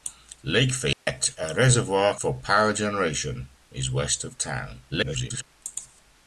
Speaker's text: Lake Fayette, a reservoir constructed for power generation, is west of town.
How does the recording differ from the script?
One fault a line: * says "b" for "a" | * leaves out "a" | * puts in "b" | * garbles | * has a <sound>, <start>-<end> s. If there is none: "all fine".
* has a dropout, 0.9-1.1 s
* leaves out "constructed"
* garbles